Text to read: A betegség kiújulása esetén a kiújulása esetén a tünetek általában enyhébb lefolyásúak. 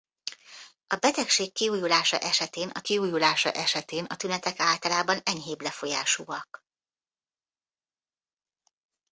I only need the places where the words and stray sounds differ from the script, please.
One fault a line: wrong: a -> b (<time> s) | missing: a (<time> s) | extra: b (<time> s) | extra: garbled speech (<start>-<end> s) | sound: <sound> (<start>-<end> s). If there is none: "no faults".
no faults